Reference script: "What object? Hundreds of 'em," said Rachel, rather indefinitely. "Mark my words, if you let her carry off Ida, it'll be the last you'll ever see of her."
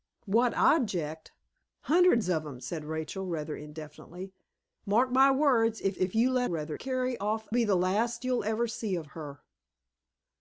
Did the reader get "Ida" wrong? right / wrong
wrong